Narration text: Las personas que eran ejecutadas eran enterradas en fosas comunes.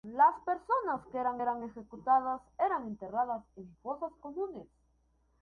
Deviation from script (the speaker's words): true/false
true